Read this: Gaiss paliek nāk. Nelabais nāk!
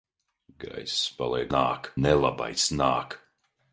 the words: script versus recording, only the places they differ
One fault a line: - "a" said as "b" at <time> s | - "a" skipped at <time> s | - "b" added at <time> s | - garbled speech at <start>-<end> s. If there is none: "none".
none